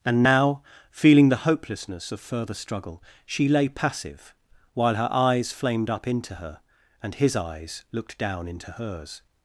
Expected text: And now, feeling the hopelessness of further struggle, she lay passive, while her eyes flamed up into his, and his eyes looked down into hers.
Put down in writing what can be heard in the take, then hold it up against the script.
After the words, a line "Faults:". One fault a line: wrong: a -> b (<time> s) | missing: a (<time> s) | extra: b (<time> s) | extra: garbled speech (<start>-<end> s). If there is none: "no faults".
And now, feeling the hopelessness of further struggle, she lay passive, while her eyes flamed up into her, and his eyes looked down into hers.
Faults:
wrong: his -> her (6.3 s)